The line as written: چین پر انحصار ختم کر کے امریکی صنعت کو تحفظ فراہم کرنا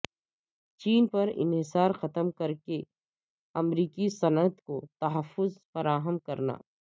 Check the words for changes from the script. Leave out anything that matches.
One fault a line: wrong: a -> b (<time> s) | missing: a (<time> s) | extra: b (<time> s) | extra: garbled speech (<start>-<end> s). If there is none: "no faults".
no faults